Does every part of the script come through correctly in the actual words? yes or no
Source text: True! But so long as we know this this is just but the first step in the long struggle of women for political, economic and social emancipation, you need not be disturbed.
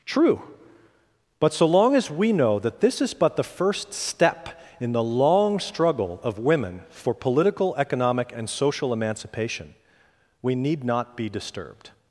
no